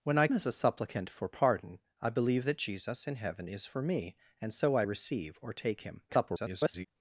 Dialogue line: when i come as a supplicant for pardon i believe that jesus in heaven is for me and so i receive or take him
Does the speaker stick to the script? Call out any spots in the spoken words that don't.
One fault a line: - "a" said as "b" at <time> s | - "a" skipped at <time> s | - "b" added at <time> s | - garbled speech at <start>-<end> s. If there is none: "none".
- "come" skipped at 0.3 s
- garbled speech at 6.1-6.9 s